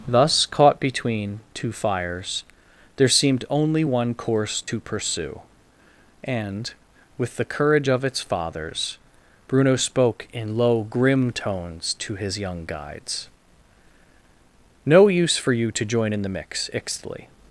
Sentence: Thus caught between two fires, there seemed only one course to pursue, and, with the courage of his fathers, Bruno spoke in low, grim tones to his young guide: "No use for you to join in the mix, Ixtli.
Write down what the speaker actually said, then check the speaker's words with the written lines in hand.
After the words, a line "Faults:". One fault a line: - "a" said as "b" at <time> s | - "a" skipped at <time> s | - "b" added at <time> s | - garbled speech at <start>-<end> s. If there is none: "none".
Thus caught between two fires, there seemed only one course to pursue, and, with the courage of its fathers, Bruno spoke in low, grim tones to his young guides: "No use for you to join in the mix, Ixtli.
Faults:
- "his" said as "its" at 8.0 s
- "guide" said as "guides" at 12.6 s